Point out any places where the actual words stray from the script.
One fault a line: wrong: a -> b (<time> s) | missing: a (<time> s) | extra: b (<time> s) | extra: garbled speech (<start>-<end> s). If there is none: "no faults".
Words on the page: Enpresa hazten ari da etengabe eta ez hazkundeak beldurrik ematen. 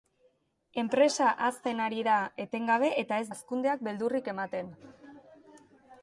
no faults